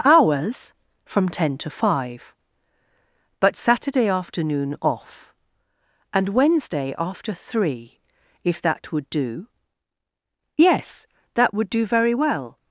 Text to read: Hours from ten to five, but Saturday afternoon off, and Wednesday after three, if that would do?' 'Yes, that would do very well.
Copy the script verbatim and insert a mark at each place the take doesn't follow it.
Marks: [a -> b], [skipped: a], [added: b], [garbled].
Hours from ten to five, but Saturday afternoon off, and Wednesday after three, if that would do?' 'Yes, that would do very well.